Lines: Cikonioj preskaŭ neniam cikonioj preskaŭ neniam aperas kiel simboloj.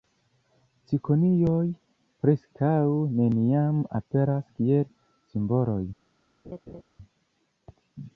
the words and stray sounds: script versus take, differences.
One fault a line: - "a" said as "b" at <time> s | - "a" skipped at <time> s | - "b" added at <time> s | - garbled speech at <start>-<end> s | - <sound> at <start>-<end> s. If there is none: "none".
- "cikonioj preskaŭ neniam" skipped at 3.9 s
- laugh at 6.4-6.8 s